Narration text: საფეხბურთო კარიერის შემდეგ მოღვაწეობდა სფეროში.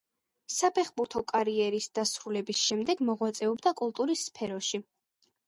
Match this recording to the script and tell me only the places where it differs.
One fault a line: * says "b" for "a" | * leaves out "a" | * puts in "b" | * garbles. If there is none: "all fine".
* puts in "დასრულების"
* puts in "კულტურის"